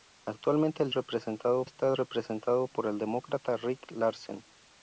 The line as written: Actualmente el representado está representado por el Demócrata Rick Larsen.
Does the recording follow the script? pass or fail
pass